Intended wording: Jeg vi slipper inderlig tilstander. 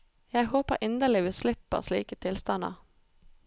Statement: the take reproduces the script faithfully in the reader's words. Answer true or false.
false